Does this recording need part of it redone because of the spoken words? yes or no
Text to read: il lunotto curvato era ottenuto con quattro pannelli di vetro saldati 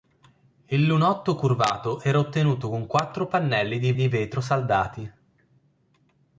yes